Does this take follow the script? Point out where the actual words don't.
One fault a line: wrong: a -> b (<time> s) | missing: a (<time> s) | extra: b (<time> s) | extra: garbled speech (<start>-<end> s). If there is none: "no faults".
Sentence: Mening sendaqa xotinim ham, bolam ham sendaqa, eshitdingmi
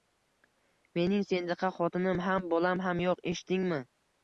wrong: sendaqa -> yo`q (3.1 s)